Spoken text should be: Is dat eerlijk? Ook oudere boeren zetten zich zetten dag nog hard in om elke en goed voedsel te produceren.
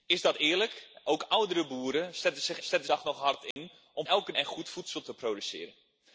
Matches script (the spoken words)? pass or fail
pass